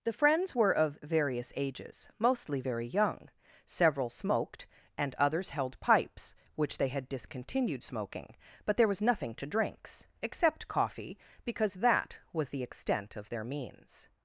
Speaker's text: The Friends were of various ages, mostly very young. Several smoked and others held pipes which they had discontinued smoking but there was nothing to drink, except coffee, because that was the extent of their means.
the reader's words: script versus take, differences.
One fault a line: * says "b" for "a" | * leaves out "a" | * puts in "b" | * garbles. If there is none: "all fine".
* says "drinks" for "drink"